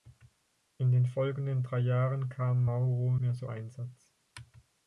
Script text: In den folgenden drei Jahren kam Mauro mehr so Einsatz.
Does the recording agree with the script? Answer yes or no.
yes